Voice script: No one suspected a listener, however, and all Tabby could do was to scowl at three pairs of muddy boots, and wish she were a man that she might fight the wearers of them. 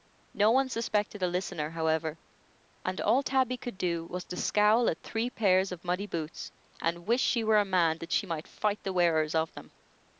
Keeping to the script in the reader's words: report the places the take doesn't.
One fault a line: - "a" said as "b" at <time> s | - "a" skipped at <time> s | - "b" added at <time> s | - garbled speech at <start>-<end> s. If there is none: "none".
none